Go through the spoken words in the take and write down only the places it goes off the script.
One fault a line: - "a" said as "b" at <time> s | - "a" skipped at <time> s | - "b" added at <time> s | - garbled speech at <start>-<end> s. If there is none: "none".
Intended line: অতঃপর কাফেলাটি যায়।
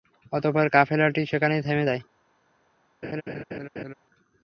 - "সেখানেই থেমে" added at 1.2 s